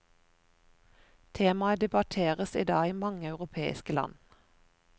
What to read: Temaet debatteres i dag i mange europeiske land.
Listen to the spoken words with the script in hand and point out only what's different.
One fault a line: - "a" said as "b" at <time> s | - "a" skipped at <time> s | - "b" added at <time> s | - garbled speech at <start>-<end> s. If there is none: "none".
none